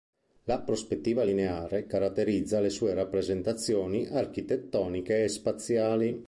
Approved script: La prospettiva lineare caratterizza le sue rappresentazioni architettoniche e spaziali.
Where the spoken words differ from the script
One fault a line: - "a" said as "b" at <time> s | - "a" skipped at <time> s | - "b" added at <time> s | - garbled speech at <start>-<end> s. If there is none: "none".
none